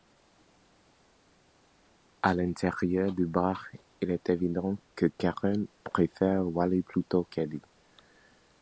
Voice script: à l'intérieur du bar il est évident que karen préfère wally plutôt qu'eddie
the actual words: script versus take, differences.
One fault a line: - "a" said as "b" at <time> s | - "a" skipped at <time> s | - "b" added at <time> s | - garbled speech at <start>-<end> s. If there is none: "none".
none